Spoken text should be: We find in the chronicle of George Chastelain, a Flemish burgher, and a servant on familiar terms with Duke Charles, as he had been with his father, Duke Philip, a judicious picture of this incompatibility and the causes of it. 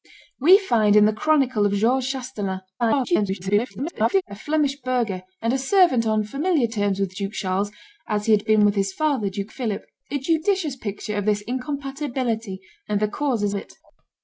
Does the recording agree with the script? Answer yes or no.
no